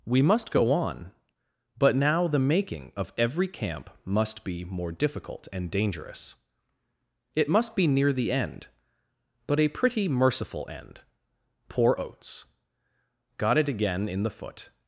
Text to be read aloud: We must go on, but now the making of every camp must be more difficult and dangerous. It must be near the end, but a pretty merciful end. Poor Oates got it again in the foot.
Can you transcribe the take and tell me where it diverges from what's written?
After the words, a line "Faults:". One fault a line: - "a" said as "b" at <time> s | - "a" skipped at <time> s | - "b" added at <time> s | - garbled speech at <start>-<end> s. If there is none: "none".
We must go on, but now the making of every camp must be more difficult and dangerous. It must be near the end, but a pretty merciful end. Poor Oates got it again in the foot.
Faults:
none